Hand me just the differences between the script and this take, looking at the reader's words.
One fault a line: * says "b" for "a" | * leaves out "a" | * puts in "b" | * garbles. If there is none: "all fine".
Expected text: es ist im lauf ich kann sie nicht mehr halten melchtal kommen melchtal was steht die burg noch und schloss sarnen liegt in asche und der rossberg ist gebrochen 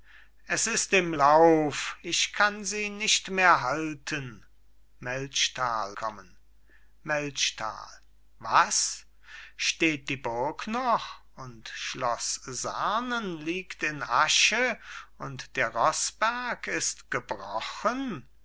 all fine